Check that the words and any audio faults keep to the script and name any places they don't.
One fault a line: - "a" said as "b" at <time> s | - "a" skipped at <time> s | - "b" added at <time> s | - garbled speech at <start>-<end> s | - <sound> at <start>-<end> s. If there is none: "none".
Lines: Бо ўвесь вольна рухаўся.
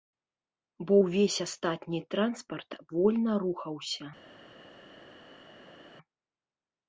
- "астатні транспарт" added at 1.5 s